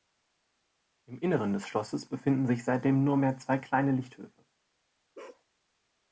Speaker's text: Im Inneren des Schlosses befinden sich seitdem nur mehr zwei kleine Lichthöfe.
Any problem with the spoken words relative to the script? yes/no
no